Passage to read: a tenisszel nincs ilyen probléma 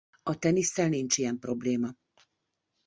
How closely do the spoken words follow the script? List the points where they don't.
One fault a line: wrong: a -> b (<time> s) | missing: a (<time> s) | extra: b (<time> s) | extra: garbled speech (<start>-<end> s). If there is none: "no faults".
no faults